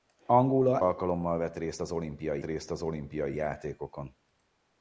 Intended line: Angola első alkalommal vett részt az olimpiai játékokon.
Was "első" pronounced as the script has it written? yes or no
no